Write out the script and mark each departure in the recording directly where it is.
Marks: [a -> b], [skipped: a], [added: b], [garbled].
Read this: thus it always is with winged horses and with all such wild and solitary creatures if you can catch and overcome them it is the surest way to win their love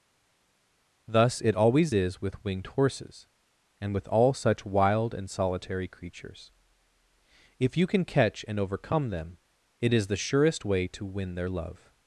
thus it always is with winged horses and with all such wild and solitary creatures if you can catch and overcome them it is the surest way to win their love